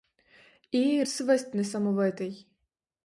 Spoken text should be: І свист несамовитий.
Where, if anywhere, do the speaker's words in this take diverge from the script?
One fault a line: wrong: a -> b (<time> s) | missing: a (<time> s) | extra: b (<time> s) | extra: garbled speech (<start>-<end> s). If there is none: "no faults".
no faults